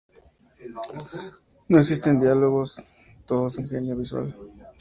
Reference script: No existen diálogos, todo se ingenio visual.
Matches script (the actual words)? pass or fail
pass